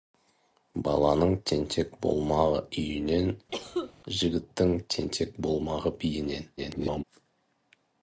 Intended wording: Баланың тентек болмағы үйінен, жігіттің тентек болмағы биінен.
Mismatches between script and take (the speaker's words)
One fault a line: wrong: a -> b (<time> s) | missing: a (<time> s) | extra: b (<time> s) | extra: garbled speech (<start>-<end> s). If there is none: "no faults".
extra: garbled speech (6.6-7.0 s)